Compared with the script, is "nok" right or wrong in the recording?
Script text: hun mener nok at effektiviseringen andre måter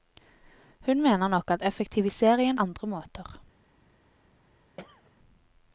right